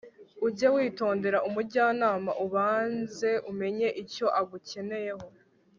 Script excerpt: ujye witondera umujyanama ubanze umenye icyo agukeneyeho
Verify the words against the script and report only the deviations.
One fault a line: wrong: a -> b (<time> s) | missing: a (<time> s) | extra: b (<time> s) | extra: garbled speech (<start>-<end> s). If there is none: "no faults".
no faults